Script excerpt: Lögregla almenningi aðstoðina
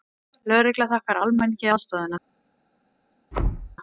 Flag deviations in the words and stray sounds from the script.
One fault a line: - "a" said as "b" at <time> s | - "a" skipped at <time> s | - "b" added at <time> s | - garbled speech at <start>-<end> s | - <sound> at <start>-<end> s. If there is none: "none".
- "þakkar" added at 0.9 s
- thud at 3.3-3.8 s